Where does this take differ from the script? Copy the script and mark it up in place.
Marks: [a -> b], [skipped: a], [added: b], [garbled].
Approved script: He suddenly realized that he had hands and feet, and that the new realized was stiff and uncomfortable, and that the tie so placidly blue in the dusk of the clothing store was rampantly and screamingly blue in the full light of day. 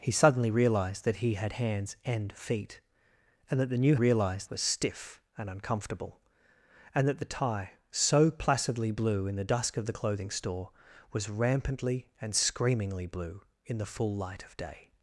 He suddenly realized that he had hands and feet, and that the new realized was stiff and uncomfortable, and that the tie so placidly blue in the dusk of the clothing store was rampantly and screamingly blue in the full light of day.